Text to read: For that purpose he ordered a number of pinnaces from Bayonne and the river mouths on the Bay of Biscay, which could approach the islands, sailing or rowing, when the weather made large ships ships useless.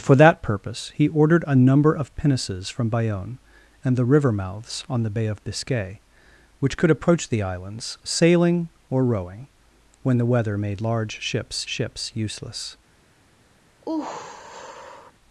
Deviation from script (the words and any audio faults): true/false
true